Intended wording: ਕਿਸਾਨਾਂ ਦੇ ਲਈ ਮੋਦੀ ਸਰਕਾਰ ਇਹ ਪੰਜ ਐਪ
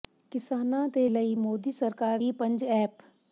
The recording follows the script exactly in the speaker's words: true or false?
true